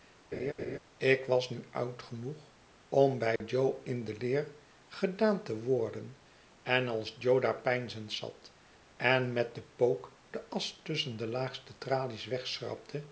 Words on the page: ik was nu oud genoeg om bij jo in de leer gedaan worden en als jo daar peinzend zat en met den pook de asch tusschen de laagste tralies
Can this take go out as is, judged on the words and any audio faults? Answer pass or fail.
fail